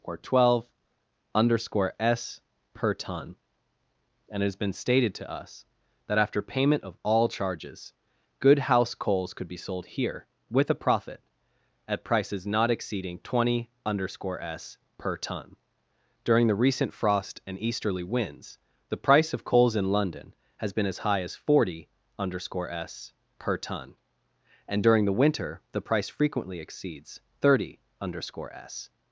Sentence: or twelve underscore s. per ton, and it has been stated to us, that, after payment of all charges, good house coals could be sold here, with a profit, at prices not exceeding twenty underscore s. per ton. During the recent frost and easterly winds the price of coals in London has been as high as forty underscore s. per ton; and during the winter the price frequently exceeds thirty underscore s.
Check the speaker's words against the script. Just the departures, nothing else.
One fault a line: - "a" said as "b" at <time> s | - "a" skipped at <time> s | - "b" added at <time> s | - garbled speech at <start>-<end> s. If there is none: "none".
none